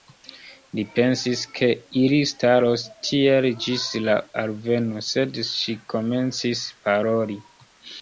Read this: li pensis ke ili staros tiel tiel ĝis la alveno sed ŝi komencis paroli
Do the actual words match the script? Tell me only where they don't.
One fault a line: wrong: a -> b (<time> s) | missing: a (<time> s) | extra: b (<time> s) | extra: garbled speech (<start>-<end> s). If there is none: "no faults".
missing: tiel (3.5 s)